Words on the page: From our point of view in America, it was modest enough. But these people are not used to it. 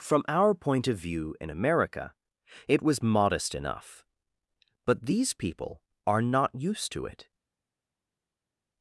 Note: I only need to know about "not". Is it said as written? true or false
true